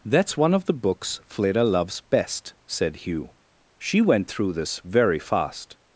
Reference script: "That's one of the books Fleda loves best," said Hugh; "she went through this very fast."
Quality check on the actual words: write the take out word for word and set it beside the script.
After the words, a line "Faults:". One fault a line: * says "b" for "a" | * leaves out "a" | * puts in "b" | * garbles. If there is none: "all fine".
"That's one of the books Fleda loves best," said Hugh; "she went through this very fast."
Faults:
all fine